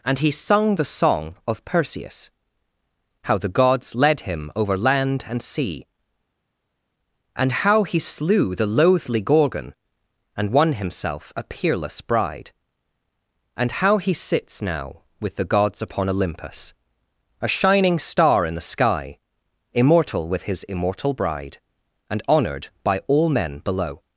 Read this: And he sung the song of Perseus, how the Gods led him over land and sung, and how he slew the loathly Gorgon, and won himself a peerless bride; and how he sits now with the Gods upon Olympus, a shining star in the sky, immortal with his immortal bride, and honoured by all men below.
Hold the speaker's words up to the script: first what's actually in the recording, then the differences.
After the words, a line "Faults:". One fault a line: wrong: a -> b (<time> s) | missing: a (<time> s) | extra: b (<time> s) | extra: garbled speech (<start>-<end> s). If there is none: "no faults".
And he sung the song of Perseus, how the Gods led him over land and sea, and how he slew the loathly Gorgon, and won himself a peerless bride; and how he sits now with the Gods upon Olympus, a shining star in the sky, immortal with his immortal bride, and honoured by all men below.
Faults:
wrong: sung -> sea (5.4 s)